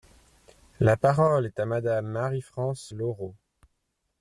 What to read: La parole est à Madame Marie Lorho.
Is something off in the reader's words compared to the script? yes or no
yes